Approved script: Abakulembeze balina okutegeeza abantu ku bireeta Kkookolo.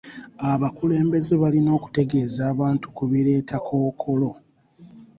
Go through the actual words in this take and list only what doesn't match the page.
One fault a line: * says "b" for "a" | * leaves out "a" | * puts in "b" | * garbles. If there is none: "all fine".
all fine